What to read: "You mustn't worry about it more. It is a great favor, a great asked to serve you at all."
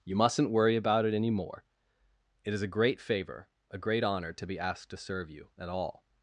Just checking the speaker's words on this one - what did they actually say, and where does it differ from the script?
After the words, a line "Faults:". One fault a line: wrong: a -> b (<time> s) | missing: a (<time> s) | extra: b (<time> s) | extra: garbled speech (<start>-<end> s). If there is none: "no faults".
"You mustn't worry about it any more. It is a great favor, a great honor, to be asked to serve you at all."
Faults:
extra: any (1.1 s)
extra: honor to be (4.0 s)